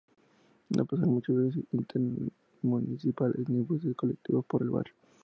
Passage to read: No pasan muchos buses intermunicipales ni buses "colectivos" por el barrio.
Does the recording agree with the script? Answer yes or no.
yes